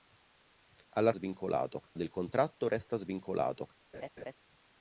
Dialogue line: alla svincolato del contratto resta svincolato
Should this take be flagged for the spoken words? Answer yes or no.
no